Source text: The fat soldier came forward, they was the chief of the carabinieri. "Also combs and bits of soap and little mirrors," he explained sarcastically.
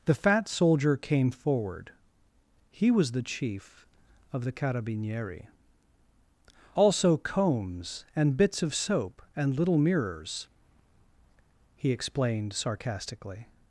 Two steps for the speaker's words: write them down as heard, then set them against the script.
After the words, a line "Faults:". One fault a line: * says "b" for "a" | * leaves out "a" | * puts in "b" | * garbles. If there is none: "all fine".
The fat soldier came forward, he was the chief of the carabinieri. "Also combs and bits of soap and little mirrors," he explained sarcastically.
Faults:
* says "he" for "they"